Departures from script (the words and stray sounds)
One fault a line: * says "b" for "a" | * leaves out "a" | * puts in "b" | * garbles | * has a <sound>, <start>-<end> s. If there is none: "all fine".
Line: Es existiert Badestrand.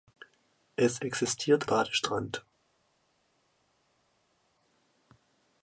all fine